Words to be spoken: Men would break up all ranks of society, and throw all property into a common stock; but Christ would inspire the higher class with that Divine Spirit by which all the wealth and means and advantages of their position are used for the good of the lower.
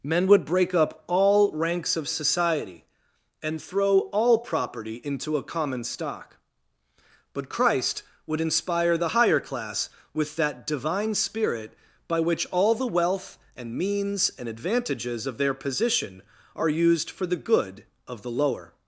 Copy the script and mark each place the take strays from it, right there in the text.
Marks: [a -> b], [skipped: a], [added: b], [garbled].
Men would break up all ranks of society, and throw all property into a common stock; but Christ would inspire the higher class with that Divine Spirit by which all the wealth and means and advantages of their position are used for the good of the lower.